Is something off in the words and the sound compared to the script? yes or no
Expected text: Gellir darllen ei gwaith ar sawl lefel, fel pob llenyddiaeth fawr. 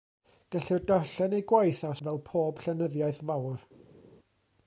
yes